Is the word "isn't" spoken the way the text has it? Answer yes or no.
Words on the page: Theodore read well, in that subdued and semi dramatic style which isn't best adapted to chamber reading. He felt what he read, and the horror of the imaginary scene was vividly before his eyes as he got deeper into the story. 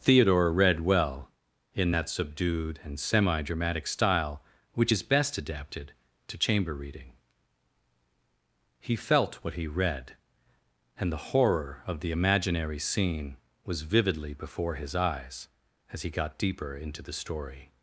no